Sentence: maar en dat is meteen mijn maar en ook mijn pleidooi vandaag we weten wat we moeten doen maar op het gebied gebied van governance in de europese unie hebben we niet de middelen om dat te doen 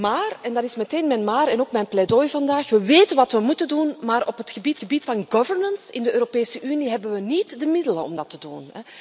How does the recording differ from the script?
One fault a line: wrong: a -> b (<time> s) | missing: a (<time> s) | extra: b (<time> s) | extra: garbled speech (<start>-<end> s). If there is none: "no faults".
no faults